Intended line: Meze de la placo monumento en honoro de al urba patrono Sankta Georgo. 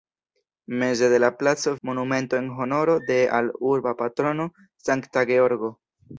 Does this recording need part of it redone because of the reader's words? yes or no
no